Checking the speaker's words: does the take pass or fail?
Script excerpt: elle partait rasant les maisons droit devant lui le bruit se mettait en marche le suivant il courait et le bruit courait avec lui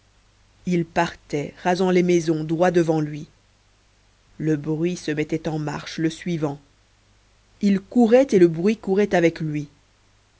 fail